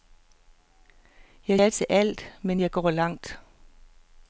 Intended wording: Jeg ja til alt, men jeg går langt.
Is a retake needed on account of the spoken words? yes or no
no